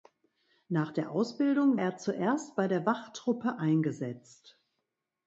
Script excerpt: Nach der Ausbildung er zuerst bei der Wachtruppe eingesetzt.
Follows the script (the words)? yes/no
yes